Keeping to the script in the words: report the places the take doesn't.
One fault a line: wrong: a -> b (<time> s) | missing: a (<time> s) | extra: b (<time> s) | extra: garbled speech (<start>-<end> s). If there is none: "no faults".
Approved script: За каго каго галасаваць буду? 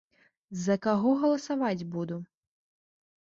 missing: каго (1.1 s)